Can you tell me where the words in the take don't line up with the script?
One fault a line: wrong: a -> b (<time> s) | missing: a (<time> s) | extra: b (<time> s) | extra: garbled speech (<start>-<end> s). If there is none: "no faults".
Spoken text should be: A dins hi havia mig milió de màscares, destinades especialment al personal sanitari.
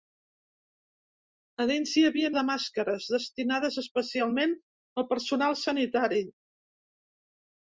missing: mig milió (2.3 s)